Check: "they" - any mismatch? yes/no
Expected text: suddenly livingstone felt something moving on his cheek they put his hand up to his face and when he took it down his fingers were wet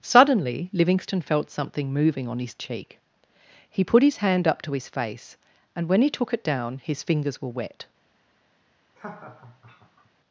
yes